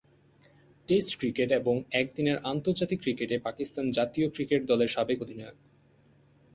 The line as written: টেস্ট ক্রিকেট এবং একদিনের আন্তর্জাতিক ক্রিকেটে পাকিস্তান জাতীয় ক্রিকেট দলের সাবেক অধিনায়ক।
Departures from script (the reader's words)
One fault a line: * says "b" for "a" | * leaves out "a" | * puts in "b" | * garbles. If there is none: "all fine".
all fine